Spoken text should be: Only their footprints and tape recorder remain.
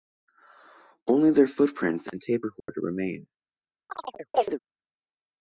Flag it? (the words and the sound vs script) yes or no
yes